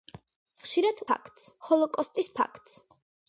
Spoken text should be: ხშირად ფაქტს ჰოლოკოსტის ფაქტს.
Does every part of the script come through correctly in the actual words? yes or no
yes